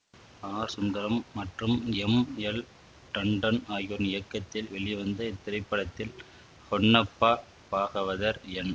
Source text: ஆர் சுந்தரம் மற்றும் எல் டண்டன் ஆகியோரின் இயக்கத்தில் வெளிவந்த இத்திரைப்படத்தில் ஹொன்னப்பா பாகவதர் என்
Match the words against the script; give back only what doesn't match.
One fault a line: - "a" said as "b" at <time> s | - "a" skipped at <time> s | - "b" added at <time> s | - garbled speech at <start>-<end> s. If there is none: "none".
- "எம்" added at 2.0 s